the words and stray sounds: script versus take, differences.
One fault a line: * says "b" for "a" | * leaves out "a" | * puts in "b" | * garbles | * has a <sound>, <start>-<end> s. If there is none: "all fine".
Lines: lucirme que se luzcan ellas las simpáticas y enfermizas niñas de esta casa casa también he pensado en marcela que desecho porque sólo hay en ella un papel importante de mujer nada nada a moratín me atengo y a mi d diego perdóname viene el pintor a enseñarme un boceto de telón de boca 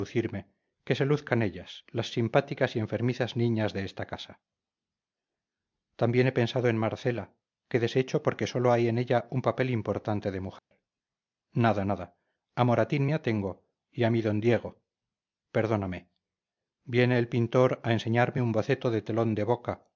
* leaves out "casa"
* has a dropout, 10.6-10.7 s